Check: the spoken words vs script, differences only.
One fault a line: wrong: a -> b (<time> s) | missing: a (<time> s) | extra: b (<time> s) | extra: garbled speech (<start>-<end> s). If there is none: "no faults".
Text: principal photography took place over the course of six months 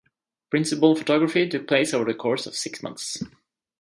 no faults